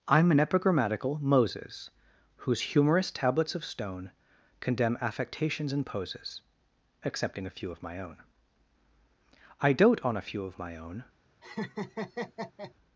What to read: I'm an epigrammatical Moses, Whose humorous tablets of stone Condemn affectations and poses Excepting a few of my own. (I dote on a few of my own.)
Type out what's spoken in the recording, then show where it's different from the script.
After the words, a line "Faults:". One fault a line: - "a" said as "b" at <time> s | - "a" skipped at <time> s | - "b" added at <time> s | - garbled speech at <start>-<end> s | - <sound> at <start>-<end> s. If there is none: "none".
I'm an epigrammatical Moses, Whose humorous tablets of stone Condemn affectations and poses Excepting a few of my own. (I dote on a few of my own.)
Faults:
- laugh at 11.4-12.7 s